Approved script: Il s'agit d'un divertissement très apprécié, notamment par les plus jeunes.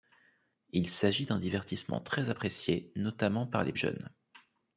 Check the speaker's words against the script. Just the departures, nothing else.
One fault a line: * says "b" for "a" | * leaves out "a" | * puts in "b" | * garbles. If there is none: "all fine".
* leaves out "plus"